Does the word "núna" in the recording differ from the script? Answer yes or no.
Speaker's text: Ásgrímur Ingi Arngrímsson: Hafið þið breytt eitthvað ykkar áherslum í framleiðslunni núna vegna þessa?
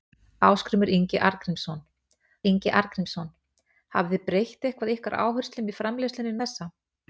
yes